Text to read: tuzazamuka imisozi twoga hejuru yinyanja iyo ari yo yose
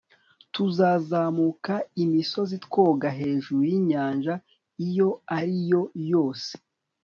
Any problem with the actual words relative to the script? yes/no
no